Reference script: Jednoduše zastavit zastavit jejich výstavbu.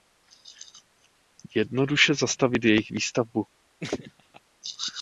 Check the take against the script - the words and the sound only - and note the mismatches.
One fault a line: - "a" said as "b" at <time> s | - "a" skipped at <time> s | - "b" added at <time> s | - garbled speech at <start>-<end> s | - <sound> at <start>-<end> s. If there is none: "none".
- "zastavit" skipped at 2.6 s
- laugh at 3.8-4.4 s